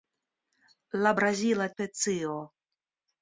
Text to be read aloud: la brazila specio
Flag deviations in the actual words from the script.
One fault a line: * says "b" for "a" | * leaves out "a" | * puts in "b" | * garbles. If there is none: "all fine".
all fine